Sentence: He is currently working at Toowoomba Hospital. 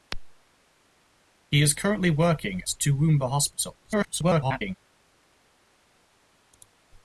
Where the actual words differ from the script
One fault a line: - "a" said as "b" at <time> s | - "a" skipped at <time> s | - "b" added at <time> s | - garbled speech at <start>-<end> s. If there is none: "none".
- "at" skipped at 2.6 s
- garbled speech at 3.8-4.7 s